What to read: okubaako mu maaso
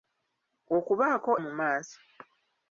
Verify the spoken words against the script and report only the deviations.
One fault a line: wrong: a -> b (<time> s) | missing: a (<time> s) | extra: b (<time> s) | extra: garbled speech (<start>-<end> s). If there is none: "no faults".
no faults